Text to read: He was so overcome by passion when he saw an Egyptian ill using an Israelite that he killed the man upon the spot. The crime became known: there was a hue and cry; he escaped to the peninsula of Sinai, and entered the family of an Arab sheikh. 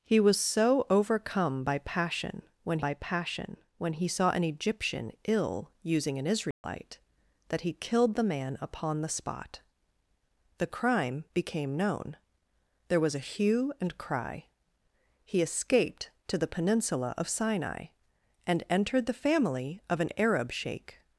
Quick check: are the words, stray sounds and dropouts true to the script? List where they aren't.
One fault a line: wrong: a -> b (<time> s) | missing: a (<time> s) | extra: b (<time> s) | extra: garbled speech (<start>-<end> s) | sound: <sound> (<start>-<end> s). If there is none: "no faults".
extra: by passion when (2.8 s)
sound: dropout (6.5-6.6 s)